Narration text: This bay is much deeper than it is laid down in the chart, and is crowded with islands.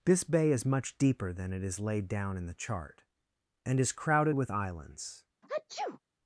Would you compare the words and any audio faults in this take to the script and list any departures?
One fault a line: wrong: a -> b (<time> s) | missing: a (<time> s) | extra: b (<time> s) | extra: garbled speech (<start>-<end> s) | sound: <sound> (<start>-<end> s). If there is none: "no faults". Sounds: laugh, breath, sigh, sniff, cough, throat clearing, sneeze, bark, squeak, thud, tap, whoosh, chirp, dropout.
sound: sneeze (5.4-6.0 s)